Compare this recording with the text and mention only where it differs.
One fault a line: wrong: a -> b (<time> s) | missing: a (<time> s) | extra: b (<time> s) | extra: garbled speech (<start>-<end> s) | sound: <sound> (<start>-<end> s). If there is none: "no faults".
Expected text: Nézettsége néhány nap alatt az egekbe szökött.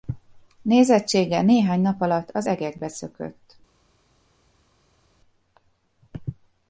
no faults